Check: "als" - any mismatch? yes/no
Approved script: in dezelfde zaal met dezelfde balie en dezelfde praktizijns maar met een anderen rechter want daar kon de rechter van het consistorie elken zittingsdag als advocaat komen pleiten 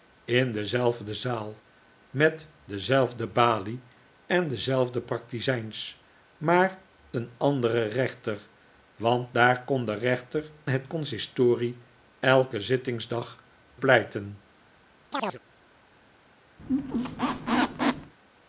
yes